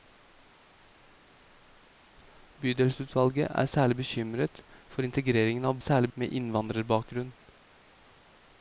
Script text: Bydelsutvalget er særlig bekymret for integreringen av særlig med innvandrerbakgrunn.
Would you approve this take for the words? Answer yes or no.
yes